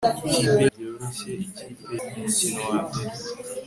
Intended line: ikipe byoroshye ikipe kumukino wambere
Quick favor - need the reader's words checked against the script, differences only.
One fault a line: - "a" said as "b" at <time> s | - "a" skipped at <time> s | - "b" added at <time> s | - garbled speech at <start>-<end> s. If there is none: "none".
none